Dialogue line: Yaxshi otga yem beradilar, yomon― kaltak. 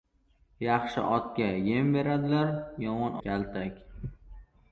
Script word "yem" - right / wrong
right